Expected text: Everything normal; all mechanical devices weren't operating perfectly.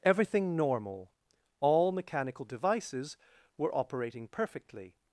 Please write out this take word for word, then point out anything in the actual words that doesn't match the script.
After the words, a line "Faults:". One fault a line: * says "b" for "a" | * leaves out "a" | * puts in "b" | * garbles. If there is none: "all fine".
Everything normal; all mechanical devices were operating perfectly.
Faults:
* says "were" for "weren't"